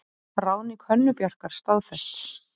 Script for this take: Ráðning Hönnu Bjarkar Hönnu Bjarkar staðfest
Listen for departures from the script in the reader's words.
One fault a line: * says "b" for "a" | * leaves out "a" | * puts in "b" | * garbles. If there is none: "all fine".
* leaves out "Hönnu Bjarkar"